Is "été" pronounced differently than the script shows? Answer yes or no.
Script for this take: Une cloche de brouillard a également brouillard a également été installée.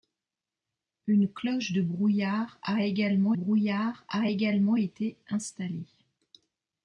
no